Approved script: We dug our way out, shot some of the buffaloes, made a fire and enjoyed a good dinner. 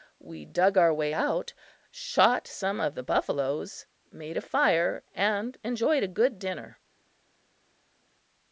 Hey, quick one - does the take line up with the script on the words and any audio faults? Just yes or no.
yes